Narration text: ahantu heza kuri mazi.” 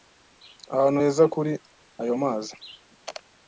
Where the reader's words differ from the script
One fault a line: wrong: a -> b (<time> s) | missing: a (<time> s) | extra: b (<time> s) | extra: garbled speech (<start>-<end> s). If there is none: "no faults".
extra: ayo (2.0 s)